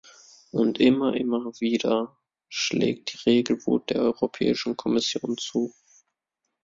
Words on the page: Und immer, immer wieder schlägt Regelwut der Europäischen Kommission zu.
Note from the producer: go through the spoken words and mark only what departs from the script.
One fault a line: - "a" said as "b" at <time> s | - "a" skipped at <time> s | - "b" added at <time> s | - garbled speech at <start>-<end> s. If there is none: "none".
- "die" added at 3.1 s